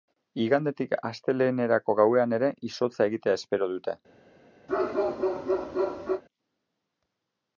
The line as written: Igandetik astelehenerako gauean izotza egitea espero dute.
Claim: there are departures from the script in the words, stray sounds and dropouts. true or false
true